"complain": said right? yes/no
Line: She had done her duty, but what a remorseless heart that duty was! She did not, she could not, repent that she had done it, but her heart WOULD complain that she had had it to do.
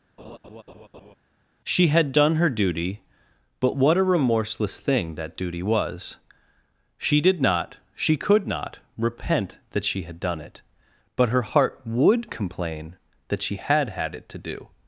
yes